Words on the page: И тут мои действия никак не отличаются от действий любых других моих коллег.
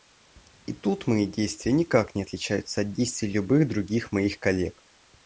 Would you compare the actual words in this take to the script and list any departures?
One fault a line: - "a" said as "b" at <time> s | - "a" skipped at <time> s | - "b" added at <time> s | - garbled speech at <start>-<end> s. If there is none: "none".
none